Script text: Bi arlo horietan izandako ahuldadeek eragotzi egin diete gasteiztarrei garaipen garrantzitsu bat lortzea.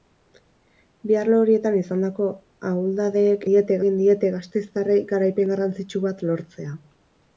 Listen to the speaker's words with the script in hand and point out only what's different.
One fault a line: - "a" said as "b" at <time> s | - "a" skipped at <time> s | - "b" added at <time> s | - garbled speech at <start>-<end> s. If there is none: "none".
- "eragotzi" said as "diete" at 3.5 s